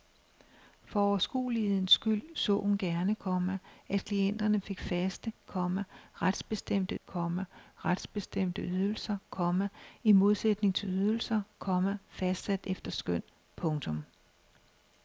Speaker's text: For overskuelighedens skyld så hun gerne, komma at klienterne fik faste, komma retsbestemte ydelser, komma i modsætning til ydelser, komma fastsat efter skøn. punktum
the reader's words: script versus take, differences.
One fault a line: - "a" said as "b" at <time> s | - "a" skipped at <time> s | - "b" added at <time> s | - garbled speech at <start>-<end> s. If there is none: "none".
- "komma retsbestemte" added at 7.0 s